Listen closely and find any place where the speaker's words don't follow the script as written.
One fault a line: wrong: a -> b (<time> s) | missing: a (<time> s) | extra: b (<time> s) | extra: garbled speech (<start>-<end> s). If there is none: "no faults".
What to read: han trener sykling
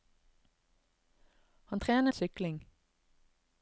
no faults